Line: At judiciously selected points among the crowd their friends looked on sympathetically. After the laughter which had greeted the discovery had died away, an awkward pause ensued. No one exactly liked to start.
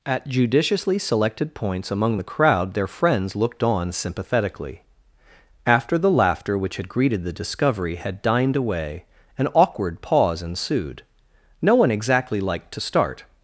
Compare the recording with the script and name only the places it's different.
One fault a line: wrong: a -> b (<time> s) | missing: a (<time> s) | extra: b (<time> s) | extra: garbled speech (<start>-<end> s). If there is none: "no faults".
wrong: died -> dined (8.2 s)